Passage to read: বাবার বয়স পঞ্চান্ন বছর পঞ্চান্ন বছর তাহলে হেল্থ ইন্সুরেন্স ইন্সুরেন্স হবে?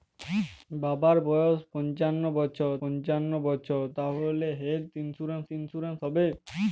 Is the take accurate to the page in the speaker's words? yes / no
yes